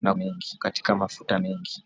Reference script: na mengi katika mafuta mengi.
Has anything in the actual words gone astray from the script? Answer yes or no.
no